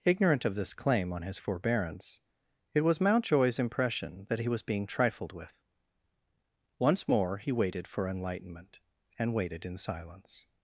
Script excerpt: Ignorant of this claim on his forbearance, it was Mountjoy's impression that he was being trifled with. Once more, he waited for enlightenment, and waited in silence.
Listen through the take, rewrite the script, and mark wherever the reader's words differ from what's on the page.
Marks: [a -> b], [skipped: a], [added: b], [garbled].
Ignorant of this claim on his forbearance, it was Mountjoy's impression that he was being trifled with. Once more, he waited for enlightenment, and waited in silence.